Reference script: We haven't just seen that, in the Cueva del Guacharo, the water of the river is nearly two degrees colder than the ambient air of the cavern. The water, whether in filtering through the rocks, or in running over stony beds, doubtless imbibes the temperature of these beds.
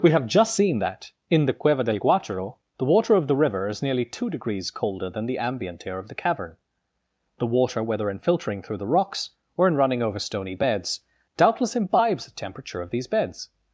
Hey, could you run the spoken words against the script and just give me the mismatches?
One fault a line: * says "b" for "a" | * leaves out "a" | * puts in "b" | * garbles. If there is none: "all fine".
* says "have" for "haven't"